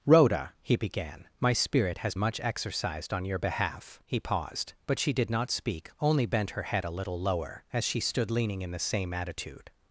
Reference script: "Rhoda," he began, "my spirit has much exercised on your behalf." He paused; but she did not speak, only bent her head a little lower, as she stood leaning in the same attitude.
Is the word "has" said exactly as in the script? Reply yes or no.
yes